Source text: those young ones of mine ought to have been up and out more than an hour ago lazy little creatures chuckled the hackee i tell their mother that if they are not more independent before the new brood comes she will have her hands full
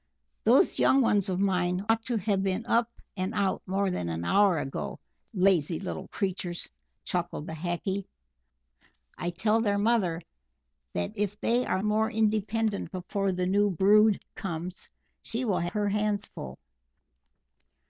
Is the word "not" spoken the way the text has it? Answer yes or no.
no